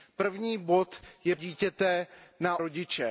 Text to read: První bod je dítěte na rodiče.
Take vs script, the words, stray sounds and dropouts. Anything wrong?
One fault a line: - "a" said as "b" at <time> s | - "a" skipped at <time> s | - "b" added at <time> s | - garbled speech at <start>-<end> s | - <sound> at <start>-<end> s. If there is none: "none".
none